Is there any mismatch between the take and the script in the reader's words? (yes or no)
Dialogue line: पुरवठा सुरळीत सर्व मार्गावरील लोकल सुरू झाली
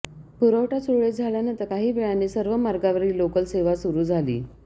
yes